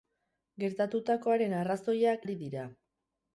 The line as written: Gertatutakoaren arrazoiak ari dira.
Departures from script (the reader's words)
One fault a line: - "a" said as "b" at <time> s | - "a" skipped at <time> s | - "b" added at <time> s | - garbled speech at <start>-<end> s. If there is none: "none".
none